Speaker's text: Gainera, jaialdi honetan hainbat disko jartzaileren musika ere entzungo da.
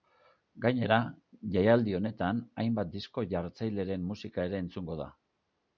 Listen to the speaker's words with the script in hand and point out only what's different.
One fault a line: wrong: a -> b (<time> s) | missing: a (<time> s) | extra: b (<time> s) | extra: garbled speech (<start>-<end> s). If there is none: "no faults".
no faults